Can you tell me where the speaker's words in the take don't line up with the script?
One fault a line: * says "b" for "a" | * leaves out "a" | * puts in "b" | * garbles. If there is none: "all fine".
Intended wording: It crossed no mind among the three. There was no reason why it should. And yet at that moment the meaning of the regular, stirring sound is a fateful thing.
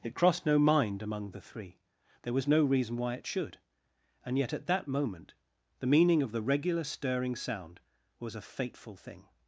* says "was" for "is"